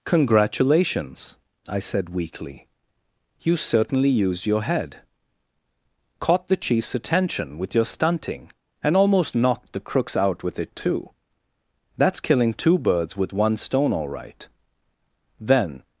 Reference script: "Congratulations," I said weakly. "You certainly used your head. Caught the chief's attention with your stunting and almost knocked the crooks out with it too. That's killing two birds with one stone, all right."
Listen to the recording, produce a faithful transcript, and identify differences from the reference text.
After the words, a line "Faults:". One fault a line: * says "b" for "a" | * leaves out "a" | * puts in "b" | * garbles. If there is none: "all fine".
"Congratulations," I said weakly. "You certainly used your head. Caught the chief's attention with your stunting and almost knocked the crooks out with it too. That's killing two birds with one stone, all right." Then
Faults:
* puts in "Then"